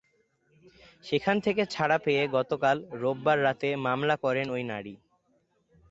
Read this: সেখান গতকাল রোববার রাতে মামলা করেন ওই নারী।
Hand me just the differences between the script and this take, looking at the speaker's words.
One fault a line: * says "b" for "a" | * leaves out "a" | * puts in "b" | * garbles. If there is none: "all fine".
* puts in "থেকে ছাড়া পেয়ে"